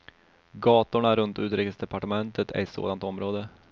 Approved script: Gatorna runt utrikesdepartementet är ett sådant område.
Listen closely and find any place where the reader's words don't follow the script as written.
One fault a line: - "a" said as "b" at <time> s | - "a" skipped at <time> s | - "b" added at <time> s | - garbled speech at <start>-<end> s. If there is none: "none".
none